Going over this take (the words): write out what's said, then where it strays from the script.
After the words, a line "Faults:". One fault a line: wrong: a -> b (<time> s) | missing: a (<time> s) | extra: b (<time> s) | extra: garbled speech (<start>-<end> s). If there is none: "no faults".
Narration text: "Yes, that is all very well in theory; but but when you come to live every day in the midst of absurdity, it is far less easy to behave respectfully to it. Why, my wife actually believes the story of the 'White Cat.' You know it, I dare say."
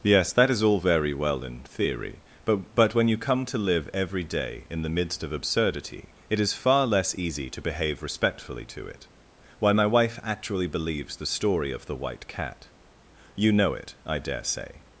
"Yes, that is all very well in theory; but but when you come to live every day in the midst of absurdity, it is far less easy to behave respectfully to it. Why, my wife actually believes the story of the 'White Cat.' You know it, I dare say."
Faults:
no faults